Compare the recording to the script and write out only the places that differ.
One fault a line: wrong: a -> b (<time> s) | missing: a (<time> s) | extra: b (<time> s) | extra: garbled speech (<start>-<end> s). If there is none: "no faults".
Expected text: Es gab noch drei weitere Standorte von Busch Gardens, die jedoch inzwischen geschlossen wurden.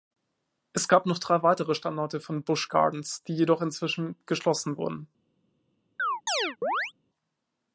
no faults